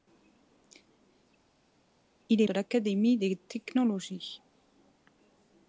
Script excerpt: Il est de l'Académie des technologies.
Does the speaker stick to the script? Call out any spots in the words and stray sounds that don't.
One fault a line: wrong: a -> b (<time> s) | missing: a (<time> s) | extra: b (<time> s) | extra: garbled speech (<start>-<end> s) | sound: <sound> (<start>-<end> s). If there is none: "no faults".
no faults